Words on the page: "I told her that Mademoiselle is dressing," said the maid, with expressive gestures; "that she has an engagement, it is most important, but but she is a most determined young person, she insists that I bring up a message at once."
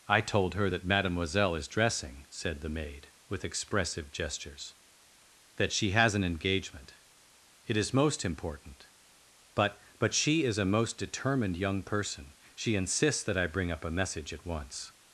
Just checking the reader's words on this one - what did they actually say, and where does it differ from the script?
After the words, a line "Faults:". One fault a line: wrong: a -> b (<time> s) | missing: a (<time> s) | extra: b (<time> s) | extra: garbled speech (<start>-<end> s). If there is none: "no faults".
"I told her that Mademoiselle is dressing," said the maid, with expressive gestures; "that she has an engagement, it is most important, but but she is a most determined young person, she insists that I bring up a message at once."
Faults:
no faults